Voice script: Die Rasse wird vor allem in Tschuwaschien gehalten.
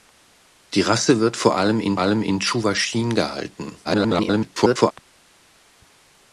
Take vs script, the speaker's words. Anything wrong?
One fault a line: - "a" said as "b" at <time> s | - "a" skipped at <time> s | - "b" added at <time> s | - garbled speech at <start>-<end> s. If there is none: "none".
- "allem in" added at 2.0 s
- garbled speech at 3.8-4.9 s